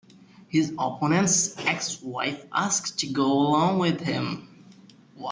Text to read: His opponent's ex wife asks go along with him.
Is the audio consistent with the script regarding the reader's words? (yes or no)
no